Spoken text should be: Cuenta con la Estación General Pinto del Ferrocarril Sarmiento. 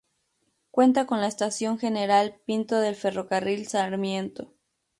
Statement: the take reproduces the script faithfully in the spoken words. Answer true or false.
true